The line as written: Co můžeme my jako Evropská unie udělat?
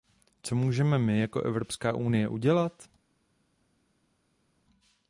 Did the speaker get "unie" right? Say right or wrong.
right